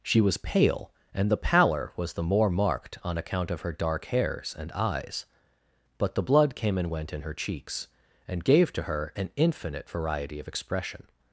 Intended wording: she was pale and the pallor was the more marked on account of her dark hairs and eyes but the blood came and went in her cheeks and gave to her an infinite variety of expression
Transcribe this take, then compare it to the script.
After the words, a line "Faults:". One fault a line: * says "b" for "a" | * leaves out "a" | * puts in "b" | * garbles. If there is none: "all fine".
she was pale and the pallor was the more marked on account of her dark hairs and eyes but the blood came and went in her cheeks and gave to her an infinite variety of expression
Faults:
all fine